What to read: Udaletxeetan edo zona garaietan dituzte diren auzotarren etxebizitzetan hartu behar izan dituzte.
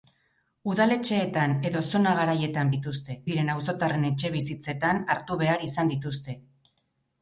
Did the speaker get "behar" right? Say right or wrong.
right